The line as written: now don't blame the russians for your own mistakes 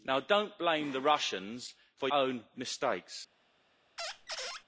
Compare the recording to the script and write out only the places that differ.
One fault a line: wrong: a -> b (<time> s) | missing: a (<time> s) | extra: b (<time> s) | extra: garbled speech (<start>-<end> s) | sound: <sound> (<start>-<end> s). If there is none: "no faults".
missing: your (2.1 s)
sound: squeak (4.0-4.6 s)